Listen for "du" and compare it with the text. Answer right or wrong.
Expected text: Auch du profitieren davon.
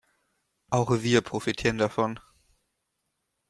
wrong